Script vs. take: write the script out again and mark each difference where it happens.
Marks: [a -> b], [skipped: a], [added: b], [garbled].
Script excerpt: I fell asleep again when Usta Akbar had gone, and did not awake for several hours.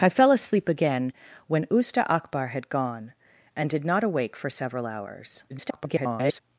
I fell asleep again when Usta Akbar had gone, and did not awake for several hours. [garbled]